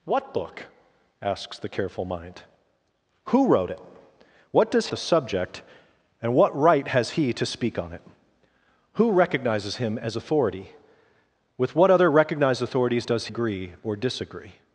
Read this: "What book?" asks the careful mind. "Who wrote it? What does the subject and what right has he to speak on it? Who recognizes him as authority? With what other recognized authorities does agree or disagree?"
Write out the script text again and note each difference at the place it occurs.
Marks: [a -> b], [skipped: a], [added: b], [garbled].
"What book?" asks the careful mind. "Who wrote it? What does the subject and what right has he to speak on it? Who recognizes him as authority? With what other recognized authorities does agree or disagree?"